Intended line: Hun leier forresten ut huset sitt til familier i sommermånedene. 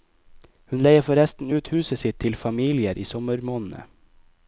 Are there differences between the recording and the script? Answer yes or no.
no